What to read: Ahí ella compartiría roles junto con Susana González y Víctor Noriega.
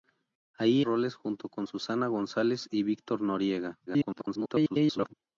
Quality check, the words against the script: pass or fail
fail